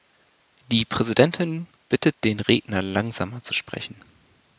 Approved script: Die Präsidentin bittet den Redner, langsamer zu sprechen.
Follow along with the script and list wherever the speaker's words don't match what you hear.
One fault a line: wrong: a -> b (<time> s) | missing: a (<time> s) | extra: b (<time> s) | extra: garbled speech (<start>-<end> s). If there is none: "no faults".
no faults